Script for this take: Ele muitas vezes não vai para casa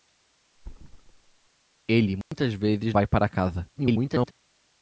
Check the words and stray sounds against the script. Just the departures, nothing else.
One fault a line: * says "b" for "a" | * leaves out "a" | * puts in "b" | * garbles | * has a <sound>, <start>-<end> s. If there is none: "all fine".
* has a thud, 0.6-1.5 s
* has a dropout, 2.2-2.3 s
* leaves out "não"
* garbles